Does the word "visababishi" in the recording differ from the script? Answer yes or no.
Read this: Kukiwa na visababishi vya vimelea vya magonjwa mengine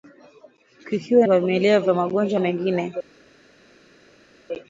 yes